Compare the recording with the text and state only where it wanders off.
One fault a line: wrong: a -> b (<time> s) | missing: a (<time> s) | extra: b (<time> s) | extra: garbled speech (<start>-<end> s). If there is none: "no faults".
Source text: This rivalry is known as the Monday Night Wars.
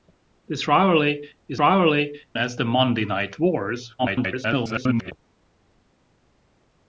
wrong: known -> rivalry (1.6 s)
extra: garbled speech (4.0-5.1 s)